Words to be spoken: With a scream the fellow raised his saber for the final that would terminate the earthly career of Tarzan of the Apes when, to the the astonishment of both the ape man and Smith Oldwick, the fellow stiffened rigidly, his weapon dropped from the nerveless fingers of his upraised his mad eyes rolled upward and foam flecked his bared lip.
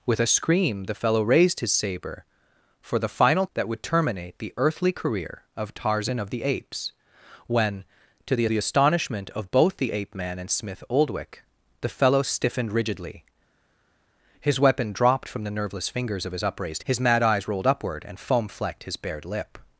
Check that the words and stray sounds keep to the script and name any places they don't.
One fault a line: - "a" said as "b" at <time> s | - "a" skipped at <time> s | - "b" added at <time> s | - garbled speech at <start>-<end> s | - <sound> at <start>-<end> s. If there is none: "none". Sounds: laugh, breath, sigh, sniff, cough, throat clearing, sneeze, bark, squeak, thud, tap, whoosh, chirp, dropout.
none